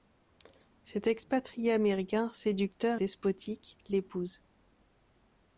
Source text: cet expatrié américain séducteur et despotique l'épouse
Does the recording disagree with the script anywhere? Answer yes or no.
yes